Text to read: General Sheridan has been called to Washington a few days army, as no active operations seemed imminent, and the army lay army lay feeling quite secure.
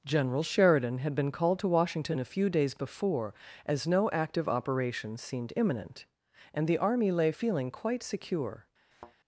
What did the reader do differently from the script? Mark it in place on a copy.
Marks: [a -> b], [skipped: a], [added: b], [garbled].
General Sheridan [has -> had] been called to Washington a few days [army, -> before] as no active operations seemed imminent, and the army lay [skipped: army lay] feeling quite secure.